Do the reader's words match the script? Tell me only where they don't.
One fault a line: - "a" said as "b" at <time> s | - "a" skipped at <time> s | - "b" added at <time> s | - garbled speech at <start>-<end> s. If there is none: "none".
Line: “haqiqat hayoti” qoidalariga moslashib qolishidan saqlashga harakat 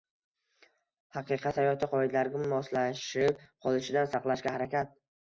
none